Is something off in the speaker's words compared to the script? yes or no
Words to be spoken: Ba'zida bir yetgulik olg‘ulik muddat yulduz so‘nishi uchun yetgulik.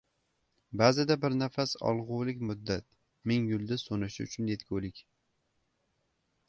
yes